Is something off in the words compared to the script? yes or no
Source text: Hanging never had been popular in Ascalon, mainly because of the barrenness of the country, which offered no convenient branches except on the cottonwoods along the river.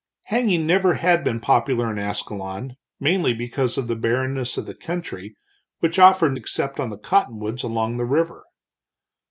yes